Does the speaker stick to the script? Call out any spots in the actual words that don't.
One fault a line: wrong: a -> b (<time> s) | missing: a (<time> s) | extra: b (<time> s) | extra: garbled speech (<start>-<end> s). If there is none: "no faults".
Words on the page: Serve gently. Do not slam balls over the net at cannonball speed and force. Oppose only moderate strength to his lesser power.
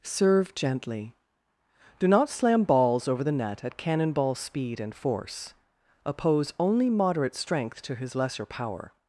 no faults